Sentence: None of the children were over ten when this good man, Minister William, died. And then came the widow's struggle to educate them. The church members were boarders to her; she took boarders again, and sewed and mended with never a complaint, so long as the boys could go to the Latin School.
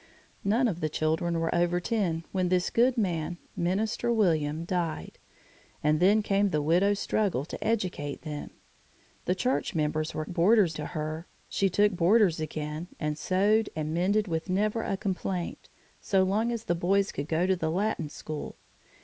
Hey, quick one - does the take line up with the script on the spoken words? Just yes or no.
yes